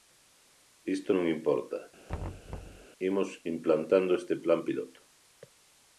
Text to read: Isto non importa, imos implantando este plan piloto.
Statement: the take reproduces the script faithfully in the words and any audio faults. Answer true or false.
false